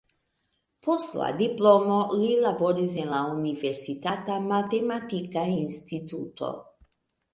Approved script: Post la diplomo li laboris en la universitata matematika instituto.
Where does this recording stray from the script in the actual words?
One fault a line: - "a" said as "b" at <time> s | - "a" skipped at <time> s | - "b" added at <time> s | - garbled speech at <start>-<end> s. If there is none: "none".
none